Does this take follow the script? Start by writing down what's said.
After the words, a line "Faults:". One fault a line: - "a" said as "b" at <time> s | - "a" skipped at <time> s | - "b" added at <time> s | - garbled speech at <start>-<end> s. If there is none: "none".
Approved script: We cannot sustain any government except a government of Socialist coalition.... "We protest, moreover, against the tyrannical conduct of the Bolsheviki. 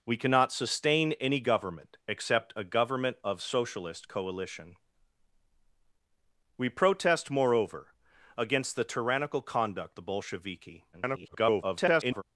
We cannot sustain any government except a government of Socialist coalition.... "We protest, moreover, against the tyrannical conduct the Bolsheviki. [garbled]
Faults:
- "of" skipped at 10.0 s
- garbled speech at 10.9-12.2 s